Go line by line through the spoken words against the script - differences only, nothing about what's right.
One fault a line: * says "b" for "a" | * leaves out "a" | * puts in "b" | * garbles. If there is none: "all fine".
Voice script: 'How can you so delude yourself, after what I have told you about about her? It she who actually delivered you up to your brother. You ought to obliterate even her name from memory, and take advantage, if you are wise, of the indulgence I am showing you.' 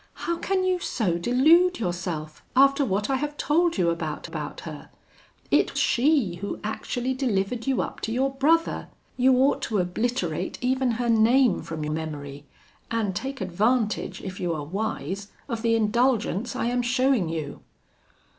all fine